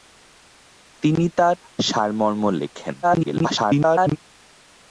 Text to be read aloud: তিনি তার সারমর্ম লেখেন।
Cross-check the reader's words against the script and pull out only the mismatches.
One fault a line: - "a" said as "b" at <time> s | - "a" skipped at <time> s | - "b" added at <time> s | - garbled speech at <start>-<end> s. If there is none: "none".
- garbled speech at 3.0-4.2 s